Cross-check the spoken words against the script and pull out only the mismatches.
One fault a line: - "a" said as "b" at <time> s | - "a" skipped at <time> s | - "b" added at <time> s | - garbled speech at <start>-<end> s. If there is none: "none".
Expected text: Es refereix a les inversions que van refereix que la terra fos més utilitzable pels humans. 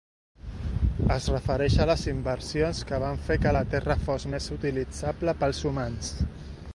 - "refereix" said as "fer" at 3.3 s